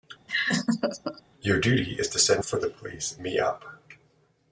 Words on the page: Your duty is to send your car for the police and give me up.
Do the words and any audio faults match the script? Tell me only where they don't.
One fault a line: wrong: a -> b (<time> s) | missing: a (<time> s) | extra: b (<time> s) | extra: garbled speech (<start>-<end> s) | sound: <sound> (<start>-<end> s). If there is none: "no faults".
sound: laugh (0.3-1.2 s)
missing: your car (2.4 s)
missing: and give (3.2 s)